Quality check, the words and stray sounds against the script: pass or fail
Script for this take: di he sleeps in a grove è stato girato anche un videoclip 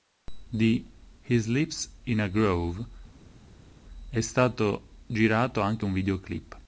pass